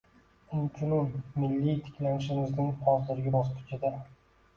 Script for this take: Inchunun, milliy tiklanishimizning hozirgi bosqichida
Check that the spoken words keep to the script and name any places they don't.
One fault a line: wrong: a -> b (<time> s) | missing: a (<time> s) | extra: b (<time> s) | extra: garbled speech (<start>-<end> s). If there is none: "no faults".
no faults